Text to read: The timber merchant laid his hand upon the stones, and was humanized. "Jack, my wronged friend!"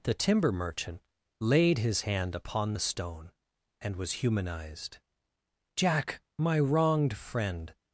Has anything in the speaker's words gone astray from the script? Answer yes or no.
yes